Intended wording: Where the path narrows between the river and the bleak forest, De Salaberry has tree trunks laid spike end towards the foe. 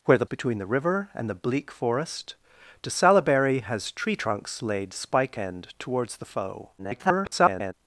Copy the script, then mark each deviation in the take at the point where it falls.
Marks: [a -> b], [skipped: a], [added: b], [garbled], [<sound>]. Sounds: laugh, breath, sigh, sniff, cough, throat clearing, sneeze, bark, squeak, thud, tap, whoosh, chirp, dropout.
Where the [skipped: path narrows] between the river and the bleak forest, De Salaberry has tree trunks laid spike end towards the foe. [garbled]